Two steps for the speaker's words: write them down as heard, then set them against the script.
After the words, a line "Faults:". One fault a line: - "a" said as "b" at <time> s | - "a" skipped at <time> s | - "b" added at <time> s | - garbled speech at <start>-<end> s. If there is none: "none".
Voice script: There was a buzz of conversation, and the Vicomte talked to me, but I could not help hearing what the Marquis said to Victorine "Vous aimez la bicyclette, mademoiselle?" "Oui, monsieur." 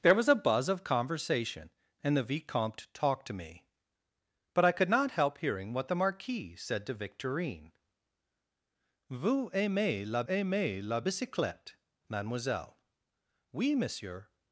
There was a buzz of conversation, and the Vicomte talked to me, but I could not help hearing what the Marquis said to Victorine "Vous aimez la aimez la bicyclette, mademoiselle?" "Oui, monsieur."
Faults:
- "aimez la" added at 10.3 s